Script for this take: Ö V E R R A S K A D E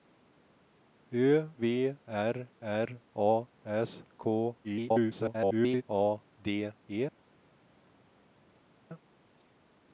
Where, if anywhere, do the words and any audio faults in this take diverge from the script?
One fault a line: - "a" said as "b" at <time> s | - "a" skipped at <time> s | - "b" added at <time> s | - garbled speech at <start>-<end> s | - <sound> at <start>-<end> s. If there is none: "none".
- "E" skipped at 2.0 s
- garbled speech at 4.6-5.8 s